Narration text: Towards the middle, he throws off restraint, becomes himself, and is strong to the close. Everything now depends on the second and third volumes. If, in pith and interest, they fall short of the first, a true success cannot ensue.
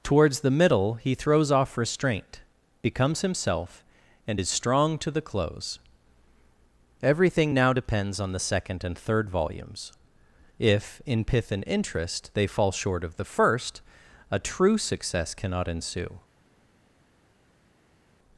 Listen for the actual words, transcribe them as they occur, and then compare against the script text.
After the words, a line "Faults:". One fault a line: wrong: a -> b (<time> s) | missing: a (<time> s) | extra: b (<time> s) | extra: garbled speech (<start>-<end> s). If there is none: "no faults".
Towards the middle, he throws off restraint, becomes himself, and is strong to the close. Everything now depends on the second and third volumes. If, in pith and interest, they fall short of the first, a true success cannot ensue.
Faults:
no faults